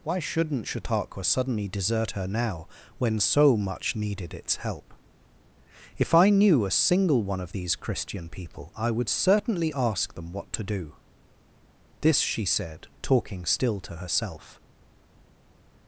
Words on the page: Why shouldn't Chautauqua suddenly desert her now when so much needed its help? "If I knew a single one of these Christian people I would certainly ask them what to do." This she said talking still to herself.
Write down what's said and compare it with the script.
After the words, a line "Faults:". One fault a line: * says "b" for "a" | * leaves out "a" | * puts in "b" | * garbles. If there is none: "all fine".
Why shouldn't Chautauqua suddenly desert her now when so much needed its help? "If I knew a single one of these Christian people I would certainly ask them what to do." This she said talking still to herself.
Faults:
all fine